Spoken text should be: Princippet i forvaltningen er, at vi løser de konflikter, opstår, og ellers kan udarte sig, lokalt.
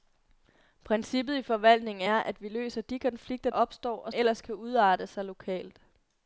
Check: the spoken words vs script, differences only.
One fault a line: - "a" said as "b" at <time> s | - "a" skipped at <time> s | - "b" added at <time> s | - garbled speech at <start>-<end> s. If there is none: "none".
none